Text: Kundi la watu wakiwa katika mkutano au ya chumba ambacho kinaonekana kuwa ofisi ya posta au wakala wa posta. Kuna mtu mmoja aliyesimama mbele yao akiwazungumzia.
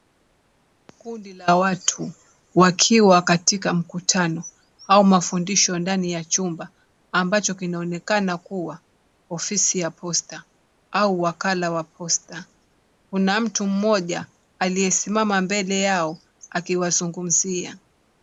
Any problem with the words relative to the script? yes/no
yes